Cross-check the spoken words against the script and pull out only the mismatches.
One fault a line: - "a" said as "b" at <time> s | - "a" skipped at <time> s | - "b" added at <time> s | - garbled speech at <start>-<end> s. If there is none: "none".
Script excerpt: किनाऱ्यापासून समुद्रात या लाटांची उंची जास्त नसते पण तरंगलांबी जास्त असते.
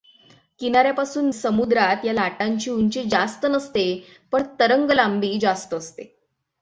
none